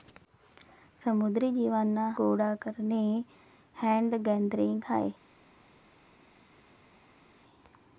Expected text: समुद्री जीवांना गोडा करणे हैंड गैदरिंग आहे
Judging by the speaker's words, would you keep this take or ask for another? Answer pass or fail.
pass